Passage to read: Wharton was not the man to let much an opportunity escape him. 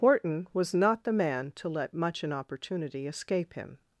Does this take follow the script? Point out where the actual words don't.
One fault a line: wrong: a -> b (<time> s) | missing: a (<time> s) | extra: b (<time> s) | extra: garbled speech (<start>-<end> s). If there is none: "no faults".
no faults